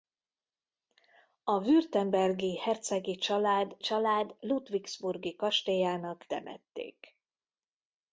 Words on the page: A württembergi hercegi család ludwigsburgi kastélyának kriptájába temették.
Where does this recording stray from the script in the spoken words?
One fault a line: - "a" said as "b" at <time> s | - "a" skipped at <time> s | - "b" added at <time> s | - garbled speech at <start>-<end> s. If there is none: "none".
- "család" added at 3.8 s
- "kriptájába" skipped at 6.3 s